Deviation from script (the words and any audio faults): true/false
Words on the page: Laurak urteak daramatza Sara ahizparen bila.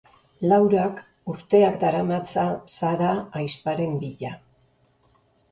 false